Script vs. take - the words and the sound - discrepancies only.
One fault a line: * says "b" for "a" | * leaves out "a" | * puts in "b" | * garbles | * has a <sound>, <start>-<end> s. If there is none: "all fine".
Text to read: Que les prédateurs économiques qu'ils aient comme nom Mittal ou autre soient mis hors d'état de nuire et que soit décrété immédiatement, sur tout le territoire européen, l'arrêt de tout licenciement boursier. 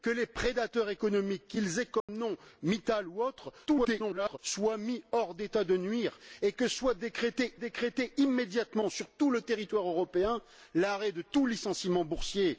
* has a dropout, 2.0-2.1 s
* garbles
* puts in "décrété"